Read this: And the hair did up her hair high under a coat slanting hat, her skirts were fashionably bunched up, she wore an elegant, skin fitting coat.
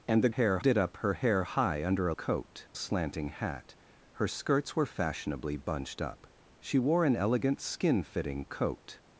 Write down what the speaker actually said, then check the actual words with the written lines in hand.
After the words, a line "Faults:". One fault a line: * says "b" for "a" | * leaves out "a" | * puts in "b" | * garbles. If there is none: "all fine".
And the hair did up her hair high under a coat slanting hat, her skirts were fashionably bunched up, she wore an elegant, skin fitting coat.
Faults:
all fine